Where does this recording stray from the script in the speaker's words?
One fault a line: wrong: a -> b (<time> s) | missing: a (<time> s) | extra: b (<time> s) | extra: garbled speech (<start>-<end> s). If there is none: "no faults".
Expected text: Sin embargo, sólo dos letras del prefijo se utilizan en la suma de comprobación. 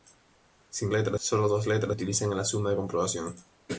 wrong: embargo -> letras (0.9 s)
missing: del prefijo se (2.0 s)